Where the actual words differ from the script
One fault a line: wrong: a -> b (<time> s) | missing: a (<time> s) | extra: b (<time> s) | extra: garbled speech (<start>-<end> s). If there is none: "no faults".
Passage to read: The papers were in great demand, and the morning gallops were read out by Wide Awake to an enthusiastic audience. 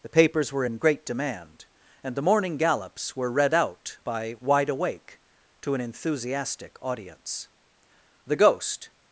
extra: The Ghost (8.3 s)